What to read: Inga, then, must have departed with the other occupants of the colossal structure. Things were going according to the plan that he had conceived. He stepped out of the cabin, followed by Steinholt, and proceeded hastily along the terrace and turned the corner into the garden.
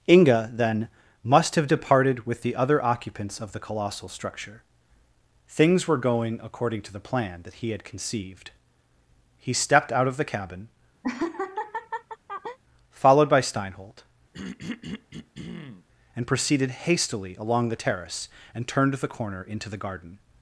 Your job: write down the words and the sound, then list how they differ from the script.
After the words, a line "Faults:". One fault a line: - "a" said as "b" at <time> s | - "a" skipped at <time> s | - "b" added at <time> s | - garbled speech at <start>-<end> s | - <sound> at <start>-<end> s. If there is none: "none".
Inga, then, must have departed with the other occupants of the colossal structure. Things were going according to the plan that he had conceived. He stepped out of the cabin, followed by Steinholt, and proceeded hastily along the terrace and turned the corner into the garden.
Faults:
- laugh at 11.0-12.6 s
- throat clearing at 14.3-15.9 s